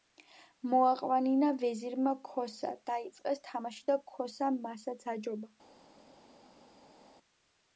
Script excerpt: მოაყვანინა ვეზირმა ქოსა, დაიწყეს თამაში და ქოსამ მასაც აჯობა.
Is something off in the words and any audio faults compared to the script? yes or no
no